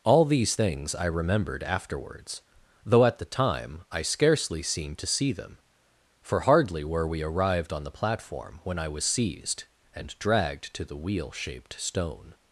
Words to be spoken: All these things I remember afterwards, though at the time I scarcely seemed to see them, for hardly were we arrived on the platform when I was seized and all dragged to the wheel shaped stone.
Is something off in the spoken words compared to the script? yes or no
yes